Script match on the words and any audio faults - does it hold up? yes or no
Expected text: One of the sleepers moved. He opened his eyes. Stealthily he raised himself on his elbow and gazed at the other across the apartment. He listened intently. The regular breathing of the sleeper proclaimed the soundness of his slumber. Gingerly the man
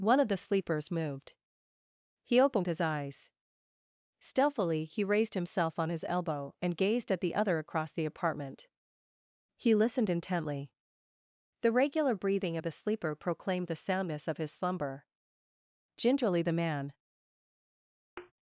no